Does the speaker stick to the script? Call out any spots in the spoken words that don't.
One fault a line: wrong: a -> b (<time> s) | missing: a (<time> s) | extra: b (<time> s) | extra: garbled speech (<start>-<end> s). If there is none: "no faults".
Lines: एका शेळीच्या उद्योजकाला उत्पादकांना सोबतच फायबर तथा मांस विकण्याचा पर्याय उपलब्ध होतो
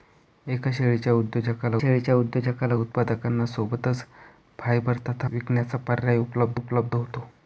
extra: शेळीच्या उद्योजकाला (1.8 s)
missing: मांस (5.3 s)
extra: उपलब्ध (6.5 s)